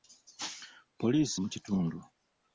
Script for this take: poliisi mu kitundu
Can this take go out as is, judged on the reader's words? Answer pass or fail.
pass